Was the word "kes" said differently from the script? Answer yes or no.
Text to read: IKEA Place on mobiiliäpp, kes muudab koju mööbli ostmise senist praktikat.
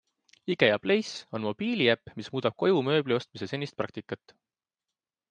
yes